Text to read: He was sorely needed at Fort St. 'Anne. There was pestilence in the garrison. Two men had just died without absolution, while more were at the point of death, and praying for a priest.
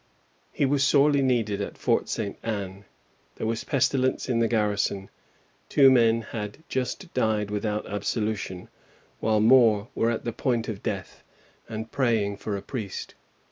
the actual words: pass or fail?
pass